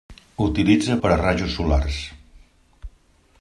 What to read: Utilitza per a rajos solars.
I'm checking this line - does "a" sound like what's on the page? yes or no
yes